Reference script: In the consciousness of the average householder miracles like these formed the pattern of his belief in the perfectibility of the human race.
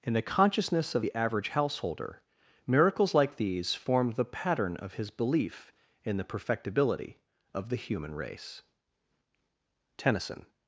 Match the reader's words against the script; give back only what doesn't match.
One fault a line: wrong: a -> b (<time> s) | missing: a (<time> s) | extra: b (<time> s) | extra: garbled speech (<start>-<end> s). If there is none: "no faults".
extra: Tennyson (10.0 s)